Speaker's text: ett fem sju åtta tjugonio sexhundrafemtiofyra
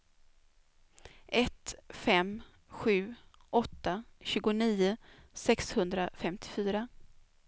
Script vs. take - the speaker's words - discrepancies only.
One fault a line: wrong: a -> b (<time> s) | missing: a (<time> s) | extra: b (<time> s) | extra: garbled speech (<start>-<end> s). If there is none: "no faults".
no faults